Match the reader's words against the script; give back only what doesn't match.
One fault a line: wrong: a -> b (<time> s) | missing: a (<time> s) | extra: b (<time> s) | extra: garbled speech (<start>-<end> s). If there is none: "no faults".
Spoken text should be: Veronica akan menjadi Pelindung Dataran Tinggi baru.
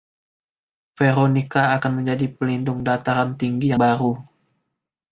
no faults